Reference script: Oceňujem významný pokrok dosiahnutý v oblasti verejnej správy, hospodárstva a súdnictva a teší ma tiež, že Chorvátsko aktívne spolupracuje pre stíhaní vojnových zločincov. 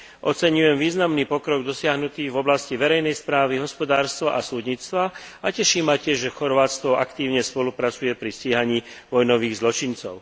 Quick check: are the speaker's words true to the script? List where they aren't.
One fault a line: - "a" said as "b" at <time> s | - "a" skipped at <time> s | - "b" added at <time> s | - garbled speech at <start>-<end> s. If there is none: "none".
- "pre" said as "pri" at 8.2 s